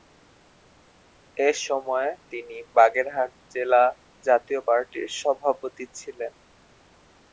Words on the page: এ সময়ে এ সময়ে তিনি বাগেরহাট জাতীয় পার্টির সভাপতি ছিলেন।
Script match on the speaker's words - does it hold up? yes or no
no